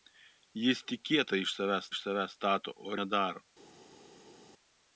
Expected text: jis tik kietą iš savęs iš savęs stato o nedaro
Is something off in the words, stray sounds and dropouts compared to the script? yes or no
no